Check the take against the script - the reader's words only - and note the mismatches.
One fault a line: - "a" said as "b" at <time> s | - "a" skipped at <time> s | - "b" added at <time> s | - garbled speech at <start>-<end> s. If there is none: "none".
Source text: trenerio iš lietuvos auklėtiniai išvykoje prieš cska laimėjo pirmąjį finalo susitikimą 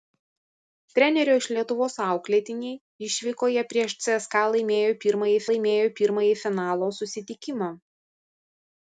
- "laimėjo pirmąjį" added at 5.5 s